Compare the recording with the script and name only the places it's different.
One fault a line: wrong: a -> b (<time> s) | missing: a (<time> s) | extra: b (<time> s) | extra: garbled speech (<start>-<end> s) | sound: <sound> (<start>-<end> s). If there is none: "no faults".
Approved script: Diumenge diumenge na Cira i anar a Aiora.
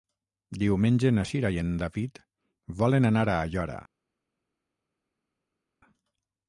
missing: diumenge (1.1 s)
extra: en David volen (1.6 s)